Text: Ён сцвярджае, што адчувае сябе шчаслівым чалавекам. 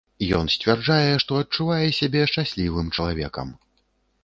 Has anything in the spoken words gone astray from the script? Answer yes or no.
no